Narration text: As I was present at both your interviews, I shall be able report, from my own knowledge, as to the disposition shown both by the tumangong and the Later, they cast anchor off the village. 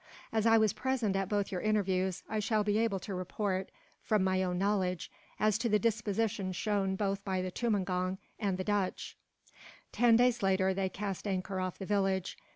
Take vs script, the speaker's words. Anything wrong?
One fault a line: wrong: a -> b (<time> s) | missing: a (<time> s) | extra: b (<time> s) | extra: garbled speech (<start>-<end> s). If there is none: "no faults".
extra: to (3.0 s)
extra: Dutch Ten days (8.6 s)